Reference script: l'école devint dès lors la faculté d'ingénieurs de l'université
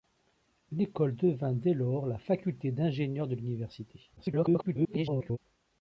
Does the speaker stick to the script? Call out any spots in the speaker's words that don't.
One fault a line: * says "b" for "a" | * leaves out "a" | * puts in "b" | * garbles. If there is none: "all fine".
* garbles